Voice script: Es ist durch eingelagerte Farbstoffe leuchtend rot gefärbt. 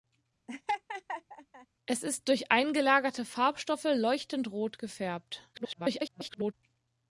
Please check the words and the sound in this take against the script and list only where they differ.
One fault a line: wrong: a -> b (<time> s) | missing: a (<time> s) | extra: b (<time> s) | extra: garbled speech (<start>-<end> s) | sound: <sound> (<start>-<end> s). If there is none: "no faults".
sound: laugh (0.5-1.7 s)
extra: garbled speech (5.5-6.5 s)